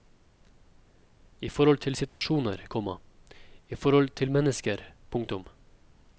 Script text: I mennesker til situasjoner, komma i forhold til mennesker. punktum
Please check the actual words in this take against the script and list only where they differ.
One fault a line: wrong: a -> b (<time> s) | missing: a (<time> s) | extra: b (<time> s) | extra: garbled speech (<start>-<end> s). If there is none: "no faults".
wrong: mennesker -> forhold (1.5 s)